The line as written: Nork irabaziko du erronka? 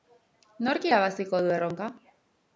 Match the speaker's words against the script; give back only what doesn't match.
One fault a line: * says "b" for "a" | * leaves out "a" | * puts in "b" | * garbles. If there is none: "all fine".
all fine